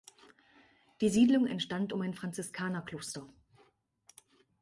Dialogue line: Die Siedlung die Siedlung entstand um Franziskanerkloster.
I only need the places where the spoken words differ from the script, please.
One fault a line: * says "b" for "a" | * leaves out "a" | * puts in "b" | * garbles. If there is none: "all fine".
* leaves out "die Siedlung"
* puts in "ein"